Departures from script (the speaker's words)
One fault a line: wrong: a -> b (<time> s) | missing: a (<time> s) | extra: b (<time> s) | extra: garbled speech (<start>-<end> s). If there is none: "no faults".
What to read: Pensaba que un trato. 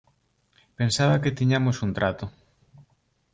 extra: tiñamos (1.3 s)